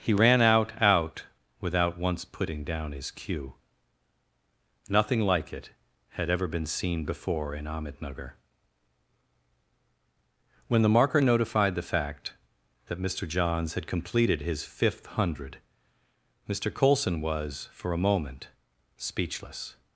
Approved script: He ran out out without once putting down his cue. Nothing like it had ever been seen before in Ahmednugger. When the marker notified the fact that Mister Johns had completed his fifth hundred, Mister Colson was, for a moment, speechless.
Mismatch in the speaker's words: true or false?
false